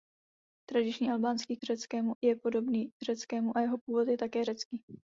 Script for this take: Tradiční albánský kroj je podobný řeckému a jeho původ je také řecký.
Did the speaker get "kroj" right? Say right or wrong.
wrong